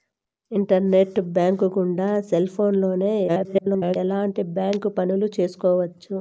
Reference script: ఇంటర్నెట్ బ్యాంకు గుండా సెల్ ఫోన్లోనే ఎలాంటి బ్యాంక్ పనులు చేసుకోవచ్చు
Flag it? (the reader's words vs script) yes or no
yes